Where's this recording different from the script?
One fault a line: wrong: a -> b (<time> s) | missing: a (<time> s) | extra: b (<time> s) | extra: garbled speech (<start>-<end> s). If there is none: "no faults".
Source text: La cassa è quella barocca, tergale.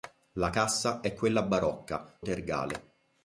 no faults